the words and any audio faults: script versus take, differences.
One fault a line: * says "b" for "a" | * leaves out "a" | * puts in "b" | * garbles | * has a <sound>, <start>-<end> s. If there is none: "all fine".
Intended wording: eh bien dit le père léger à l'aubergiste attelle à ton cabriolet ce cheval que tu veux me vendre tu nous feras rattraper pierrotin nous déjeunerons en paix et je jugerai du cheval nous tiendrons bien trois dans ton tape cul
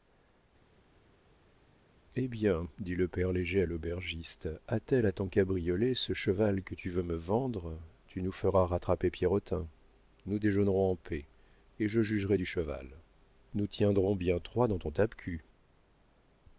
all fine